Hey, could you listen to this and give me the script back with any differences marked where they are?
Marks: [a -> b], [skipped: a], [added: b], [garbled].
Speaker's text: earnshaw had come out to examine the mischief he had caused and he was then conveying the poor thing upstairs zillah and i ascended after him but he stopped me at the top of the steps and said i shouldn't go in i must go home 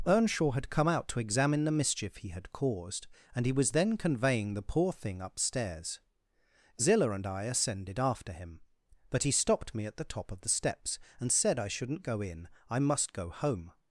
earnshaw had come out to examine the mischief he had caused and he was then conveying the poor thing upstairs zillah and i ascended after him but he stopped me at the top of the steps and said i shouldn't go in i must go home